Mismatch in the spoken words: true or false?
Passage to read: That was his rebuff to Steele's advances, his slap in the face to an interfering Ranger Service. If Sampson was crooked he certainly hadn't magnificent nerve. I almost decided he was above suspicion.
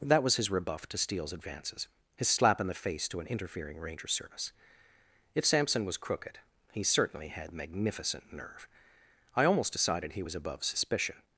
true